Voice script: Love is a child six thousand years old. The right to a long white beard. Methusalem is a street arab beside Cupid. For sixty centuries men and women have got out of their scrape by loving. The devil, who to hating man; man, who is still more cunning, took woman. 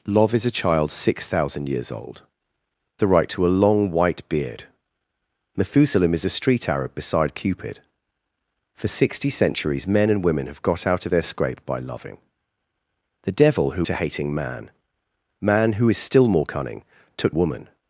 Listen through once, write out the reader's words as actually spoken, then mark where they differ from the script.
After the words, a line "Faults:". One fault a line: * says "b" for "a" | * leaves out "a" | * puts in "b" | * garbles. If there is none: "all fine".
Love is a child six thousand years old. The right to a long white beard. Methusalem is a street arab beside Cupid. For sixty centuries men and women have got out of their scrape by loving. The devil, who to hating man; man, who is still more cunning, took woman.
Faults:
all fine